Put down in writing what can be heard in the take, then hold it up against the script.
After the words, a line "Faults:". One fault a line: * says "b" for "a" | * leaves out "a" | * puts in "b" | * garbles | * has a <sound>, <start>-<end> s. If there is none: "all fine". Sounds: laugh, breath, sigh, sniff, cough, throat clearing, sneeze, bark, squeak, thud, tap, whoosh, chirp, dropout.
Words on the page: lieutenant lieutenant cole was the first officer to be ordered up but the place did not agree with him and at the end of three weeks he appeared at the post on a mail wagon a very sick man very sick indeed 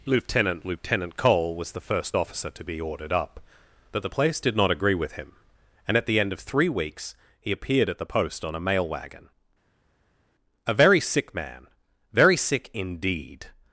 lieutenant lieutenant cole was the first officer to be ordered up but the place did not agree with him and at the end of three weeks he appeared at the post on a mail wagon a very sick man very sick indeed
Faults:
all fine